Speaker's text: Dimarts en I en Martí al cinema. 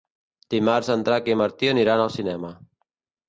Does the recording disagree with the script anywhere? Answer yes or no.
yes